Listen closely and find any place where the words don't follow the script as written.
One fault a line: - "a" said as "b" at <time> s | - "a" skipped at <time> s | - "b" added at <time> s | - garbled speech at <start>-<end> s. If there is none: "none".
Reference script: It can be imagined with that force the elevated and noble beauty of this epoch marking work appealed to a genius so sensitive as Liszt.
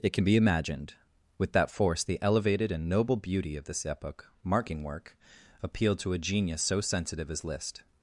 none